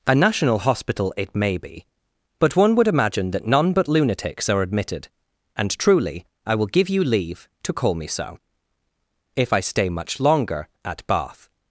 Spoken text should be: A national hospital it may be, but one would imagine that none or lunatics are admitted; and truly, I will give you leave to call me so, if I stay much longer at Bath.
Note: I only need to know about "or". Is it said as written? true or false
false